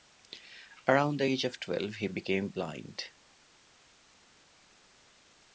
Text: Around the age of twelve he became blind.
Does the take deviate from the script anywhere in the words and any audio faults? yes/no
no